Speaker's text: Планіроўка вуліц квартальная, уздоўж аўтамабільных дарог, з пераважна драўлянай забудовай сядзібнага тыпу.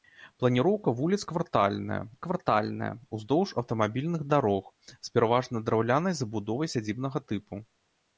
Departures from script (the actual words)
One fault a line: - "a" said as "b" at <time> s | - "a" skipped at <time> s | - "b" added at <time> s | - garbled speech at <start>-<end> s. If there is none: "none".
- "квартальная" added at 2.3 s